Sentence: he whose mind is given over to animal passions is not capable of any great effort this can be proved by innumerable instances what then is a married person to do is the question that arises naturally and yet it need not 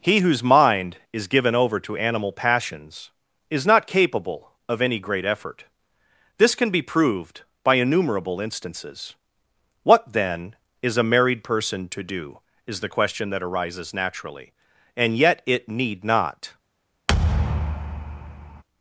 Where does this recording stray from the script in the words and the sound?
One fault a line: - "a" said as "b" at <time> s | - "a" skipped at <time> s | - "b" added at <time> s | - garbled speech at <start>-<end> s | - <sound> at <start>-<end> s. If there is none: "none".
- thud at 17.1-18.6 s